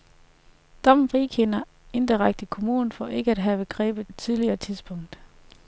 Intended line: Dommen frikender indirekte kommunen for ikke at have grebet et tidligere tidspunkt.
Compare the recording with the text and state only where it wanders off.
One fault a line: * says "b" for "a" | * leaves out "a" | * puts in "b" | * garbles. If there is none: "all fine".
all fine